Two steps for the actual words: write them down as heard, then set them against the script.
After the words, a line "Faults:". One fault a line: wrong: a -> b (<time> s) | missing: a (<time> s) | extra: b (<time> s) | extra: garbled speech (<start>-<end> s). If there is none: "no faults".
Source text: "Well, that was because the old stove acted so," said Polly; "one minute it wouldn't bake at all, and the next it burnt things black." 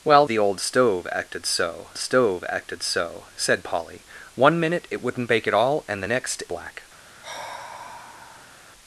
"Well, the old stove acted so stove acted so," said Polly; "one minute it wouldn't bake at all, and the next black."
Faults:
wrong: that was because the old -> the old stove acted so (0.3 s)
missing: it burnt things (6.4 s)